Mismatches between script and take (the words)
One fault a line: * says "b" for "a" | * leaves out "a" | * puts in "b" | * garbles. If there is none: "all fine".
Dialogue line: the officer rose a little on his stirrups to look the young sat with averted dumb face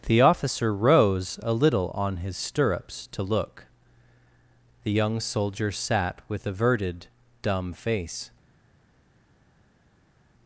* puts in "soldier"